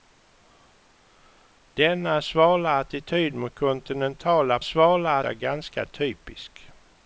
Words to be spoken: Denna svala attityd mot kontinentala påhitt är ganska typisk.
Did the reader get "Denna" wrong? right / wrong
right